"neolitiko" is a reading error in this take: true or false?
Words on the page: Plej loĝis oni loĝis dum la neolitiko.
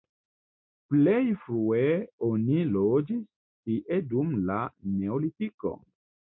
false